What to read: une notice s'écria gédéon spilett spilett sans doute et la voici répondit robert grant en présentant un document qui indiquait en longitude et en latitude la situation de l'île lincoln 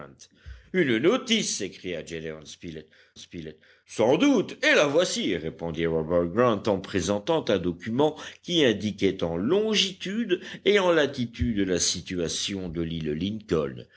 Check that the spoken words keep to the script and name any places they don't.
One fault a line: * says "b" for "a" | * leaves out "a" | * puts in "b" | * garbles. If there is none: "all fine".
all fine